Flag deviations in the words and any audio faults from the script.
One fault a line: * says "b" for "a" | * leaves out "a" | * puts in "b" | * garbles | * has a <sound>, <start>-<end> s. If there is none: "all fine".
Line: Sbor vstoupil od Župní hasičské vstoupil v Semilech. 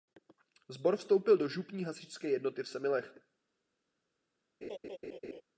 * says "do" for "od"
* says "jednoty" for "vstoupil"
* has a laugh, 4.6-5.4 s